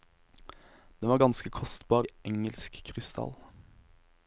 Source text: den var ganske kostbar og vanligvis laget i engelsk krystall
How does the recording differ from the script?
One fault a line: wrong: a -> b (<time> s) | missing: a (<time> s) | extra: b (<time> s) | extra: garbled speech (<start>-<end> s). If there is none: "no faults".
missing: og vanligvis laget (2.1 s)